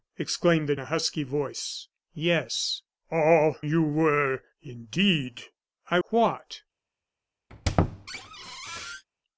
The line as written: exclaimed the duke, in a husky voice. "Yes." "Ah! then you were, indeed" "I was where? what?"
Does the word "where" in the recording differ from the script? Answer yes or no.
yes